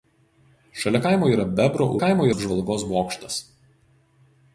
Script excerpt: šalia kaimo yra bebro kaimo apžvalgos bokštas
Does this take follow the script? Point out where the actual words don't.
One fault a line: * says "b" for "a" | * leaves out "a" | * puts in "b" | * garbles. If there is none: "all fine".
all fine